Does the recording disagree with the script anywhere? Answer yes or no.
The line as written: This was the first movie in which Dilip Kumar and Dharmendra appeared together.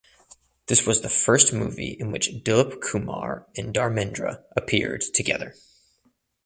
no